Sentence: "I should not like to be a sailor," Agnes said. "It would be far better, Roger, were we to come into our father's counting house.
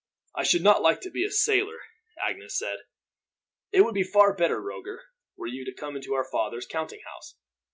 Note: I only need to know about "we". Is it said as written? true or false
false